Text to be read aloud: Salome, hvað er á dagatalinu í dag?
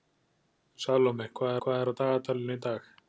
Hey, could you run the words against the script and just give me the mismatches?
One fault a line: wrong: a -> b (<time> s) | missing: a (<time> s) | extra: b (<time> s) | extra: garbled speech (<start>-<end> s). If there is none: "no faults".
extra: hvað (1.6 s)